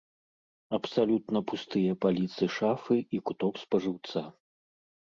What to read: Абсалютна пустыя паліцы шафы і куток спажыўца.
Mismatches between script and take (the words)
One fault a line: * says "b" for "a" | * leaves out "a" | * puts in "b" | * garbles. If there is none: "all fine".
all fine